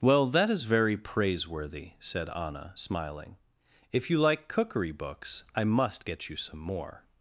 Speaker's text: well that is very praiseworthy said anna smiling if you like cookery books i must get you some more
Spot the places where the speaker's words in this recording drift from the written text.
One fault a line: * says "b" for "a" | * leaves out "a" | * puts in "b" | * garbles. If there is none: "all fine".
all fine